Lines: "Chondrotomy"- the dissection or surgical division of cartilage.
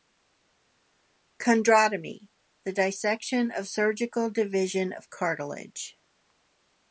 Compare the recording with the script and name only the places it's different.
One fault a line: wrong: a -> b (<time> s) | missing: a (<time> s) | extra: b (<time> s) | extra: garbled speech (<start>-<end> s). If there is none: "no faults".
no faults